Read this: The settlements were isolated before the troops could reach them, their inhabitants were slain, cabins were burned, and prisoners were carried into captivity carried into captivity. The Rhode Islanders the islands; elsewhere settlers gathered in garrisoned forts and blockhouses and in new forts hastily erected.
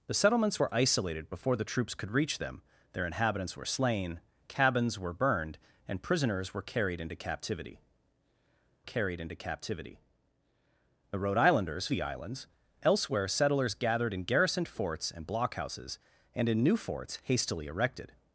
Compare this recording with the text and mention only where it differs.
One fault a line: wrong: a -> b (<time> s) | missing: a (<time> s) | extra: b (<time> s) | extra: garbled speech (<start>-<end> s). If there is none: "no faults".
no faults